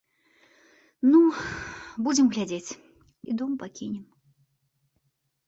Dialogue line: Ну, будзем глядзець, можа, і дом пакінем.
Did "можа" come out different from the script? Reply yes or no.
yes